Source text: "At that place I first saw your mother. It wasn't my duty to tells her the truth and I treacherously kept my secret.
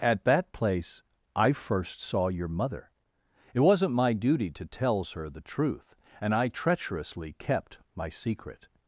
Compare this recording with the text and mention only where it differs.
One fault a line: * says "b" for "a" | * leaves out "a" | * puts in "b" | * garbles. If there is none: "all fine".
all fine